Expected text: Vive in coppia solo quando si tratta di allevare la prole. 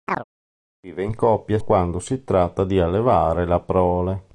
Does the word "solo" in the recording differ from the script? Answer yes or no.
yes